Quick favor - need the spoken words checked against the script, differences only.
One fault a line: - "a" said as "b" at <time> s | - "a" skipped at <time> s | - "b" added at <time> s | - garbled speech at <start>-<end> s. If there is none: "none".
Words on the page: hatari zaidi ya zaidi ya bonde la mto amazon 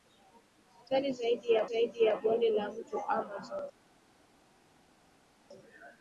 none